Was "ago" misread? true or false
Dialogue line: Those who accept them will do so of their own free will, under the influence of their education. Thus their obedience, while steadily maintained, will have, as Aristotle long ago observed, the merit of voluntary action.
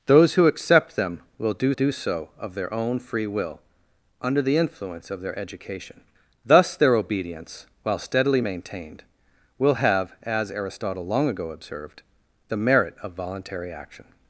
false